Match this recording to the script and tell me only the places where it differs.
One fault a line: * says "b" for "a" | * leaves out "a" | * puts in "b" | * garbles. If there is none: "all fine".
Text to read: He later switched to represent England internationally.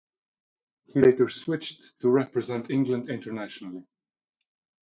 all fine